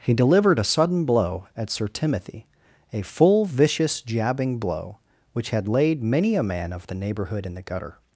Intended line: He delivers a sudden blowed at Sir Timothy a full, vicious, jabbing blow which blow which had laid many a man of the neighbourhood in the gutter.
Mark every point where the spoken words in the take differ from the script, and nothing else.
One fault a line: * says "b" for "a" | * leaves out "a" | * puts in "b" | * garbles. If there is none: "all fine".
* says "delivered" for "delivers"
* says "blow" for "blowed"
* leaves out "blow which"